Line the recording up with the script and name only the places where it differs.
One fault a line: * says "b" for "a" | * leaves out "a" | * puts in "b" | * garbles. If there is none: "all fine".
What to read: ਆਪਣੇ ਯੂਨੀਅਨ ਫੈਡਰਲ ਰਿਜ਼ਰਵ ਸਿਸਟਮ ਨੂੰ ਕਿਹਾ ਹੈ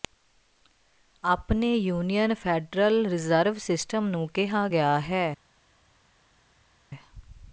* puts in "ਗਿਆ"